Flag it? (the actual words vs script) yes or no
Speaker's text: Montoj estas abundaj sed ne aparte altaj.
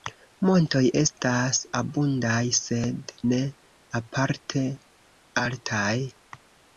no